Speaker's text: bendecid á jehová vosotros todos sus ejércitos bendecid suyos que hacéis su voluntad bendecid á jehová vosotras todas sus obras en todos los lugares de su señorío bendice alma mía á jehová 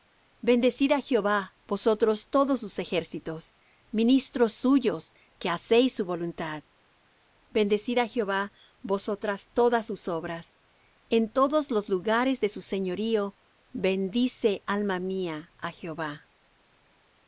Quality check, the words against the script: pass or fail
fail